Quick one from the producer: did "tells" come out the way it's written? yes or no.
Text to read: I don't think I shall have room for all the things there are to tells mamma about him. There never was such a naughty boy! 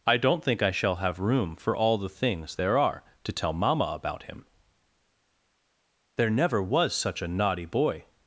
no